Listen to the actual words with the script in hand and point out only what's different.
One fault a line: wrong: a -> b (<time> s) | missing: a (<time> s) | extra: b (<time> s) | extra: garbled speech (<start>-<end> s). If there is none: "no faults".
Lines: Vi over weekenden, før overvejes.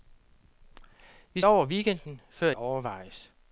no faults